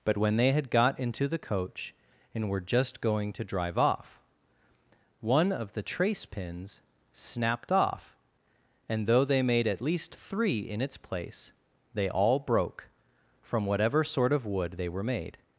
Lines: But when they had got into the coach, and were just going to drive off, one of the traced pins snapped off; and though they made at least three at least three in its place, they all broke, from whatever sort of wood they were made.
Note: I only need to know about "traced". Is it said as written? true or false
false